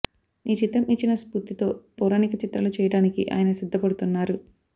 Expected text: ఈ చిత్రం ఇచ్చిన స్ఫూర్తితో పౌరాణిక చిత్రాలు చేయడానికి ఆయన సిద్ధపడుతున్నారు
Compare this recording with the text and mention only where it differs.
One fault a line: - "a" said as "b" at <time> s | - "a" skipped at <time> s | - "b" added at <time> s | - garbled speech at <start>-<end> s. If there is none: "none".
none